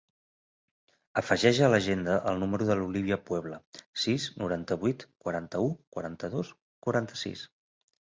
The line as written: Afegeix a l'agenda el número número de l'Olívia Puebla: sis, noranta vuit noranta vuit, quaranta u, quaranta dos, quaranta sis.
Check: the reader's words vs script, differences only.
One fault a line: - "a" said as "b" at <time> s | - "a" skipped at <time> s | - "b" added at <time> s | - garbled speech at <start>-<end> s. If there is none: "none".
- "número" skipped at 2.7 s
- "noranta vuit" skipped at 5.0 s